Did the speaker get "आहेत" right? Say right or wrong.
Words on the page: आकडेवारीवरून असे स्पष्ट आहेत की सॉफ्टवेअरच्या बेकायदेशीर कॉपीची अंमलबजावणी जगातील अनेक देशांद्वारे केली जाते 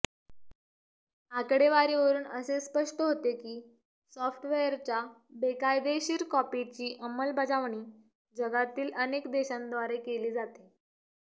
wrong